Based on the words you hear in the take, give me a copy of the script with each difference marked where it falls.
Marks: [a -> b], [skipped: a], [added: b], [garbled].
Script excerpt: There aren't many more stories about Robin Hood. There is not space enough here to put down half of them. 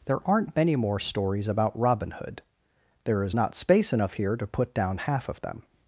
There aren't many more stories about Robin Hood. There is not space enough here to put down half of them.